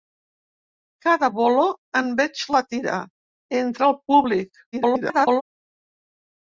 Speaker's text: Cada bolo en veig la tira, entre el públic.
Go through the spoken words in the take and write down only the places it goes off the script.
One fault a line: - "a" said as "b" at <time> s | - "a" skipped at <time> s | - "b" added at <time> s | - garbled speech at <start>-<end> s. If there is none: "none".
- garbled speech at 4.7-5.4 s